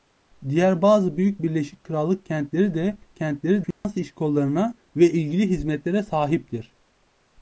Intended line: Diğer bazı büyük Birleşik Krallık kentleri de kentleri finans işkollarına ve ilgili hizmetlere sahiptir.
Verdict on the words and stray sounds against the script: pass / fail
fail